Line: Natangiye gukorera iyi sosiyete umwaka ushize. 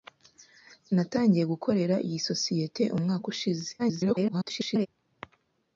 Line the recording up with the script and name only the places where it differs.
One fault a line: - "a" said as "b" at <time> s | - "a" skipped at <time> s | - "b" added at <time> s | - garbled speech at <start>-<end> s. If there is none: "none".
- garbled speech at 3.8-4.9 s